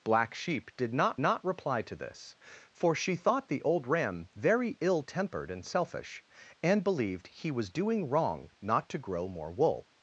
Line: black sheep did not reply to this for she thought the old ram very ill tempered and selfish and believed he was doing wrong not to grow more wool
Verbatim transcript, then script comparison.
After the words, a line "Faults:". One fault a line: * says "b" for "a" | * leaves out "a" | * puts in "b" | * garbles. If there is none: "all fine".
black sheep did not not reply to this for she thought the old ram very ill tempered and selfish and believed he was doing wrong not to grow more wool
Faults:
* puts in "not"